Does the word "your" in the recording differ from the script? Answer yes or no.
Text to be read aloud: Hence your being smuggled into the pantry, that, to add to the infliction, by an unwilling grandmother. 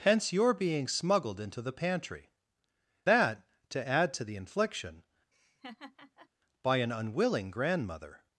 no